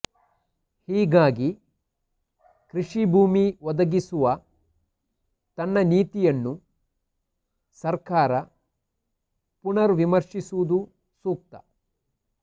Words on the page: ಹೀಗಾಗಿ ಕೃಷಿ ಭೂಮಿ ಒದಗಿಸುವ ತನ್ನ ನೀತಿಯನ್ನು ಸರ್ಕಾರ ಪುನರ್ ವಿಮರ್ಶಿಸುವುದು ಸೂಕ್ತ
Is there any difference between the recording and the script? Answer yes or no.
no